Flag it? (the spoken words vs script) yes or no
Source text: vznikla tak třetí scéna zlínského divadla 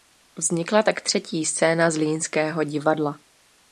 no